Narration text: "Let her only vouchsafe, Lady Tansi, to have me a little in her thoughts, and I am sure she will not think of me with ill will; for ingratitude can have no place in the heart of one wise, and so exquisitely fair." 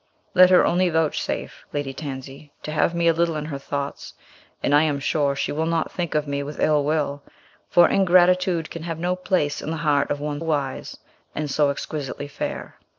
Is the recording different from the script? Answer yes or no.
no